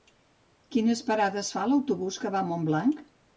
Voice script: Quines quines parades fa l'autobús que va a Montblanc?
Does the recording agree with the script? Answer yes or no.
no